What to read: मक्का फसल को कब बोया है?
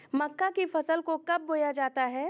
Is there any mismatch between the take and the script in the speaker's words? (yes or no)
yes